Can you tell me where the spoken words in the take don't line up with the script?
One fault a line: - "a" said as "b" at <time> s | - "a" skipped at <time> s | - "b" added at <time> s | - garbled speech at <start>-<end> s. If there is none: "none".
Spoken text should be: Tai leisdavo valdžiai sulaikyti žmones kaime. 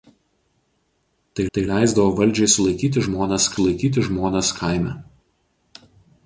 - "tai" added at 1.5 s
- "sulaikyti žmones" added at 3.6 s